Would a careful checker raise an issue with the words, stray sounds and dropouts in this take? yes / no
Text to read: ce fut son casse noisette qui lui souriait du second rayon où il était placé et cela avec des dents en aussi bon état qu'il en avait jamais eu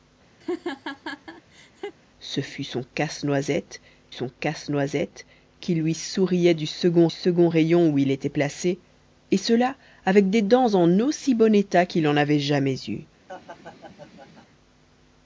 yes